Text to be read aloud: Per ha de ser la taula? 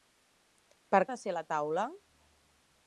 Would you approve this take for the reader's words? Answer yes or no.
yes